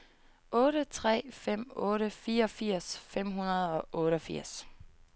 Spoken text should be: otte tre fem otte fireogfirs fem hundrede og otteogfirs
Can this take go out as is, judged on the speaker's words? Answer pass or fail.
pass